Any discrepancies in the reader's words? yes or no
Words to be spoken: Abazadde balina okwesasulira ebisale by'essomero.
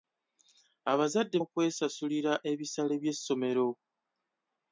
yes